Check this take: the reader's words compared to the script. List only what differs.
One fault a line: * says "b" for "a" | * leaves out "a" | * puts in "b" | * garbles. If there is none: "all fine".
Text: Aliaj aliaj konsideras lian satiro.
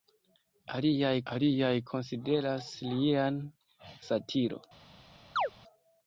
all fine